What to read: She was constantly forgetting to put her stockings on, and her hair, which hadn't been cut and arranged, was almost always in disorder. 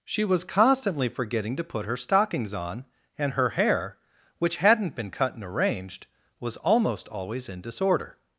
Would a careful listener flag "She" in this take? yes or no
no